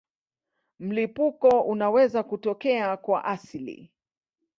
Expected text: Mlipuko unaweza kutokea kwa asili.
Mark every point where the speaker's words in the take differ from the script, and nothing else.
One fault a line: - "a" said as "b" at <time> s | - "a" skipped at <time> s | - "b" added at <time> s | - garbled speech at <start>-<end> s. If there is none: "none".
none